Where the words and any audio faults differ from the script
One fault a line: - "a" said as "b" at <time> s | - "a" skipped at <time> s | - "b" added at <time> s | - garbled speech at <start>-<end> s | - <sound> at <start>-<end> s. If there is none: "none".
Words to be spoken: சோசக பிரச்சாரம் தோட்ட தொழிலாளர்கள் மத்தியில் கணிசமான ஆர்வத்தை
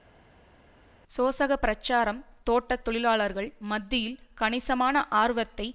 none